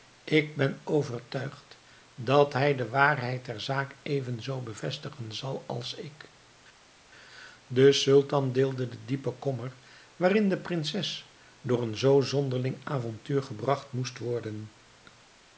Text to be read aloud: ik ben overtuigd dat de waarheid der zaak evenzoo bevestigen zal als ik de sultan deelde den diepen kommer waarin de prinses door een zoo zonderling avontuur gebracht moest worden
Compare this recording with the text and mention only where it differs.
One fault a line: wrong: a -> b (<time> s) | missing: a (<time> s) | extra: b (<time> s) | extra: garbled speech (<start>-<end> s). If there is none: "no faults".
extra: hij (2.5 s)